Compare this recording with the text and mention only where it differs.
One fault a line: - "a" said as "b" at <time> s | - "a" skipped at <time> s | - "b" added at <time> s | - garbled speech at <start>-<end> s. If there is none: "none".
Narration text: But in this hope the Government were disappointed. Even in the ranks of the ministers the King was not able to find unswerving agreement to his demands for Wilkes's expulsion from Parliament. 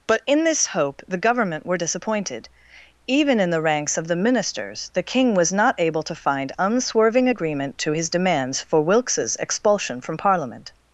none